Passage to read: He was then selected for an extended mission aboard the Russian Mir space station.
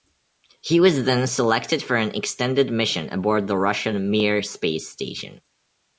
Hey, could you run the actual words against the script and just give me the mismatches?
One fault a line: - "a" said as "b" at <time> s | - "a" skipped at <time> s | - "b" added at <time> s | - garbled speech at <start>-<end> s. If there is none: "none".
none